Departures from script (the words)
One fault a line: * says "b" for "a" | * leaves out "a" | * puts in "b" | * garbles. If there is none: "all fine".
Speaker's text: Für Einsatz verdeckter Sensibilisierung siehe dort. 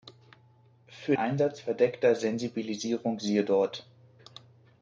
all fine